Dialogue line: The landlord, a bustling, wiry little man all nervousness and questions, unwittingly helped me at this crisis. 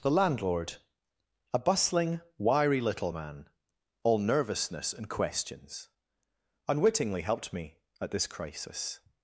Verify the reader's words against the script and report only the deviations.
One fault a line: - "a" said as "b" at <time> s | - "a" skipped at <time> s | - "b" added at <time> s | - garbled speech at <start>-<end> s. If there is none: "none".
none